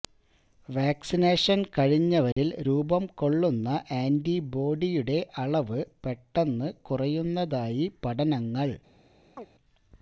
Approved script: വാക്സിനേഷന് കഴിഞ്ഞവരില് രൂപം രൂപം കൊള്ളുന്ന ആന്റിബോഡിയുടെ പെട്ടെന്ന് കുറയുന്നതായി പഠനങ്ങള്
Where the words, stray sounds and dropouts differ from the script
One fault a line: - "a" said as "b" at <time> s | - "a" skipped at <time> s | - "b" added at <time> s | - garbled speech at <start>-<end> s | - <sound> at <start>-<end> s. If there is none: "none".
- dropout at 2.3-2.4 s
- "രൂപം" skipped at 3.1 s
- "അളവ്" added at 5.4 s
- chirp at 9.4-9.5 s